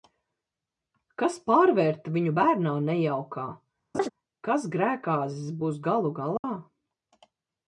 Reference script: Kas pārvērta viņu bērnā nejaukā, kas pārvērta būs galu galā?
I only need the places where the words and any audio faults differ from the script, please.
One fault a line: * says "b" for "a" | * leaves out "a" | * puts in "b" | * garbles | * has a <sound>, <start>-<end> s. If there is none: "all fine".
* has a laugh, 3.9-4.1 s
* says "grēkāzis" for "pārvērta"
* has a dropout, 6.4-6.4 s